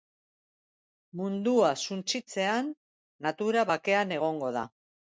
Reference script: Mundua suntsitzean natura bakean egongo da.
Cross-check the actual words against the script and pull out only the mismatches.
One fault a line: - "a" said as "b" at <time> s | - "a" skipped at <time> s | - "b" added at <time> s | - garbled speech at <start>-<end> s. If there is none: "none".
none